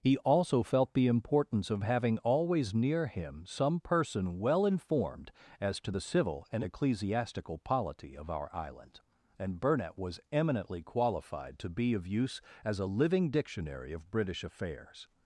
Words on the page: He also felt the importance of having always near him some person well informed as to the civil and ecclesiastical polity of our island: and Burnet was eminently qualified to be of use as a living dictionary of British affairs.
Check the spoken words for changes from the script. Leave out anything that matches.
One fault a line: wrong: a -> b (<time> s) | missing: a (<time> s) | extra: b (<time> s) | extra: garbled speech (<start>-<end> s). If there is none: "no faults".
no faults